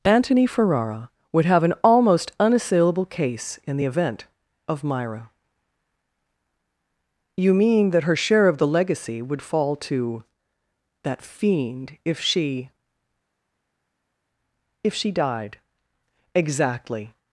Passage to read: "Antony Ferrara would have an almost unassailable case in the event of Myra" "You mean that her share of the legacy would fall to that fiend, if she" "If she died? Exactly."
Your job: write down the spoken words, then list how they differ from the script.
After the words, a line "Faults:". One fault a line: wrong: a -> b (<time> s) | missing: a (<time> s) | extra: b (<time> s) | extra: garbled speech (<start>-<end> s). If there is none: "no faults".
"Antony Ferrara would have an almost unassailable case in the event of Myra" "You mean that her share of the legacy would fall to that fiend, if she" "If she died? Exactly."
Faults:
no faults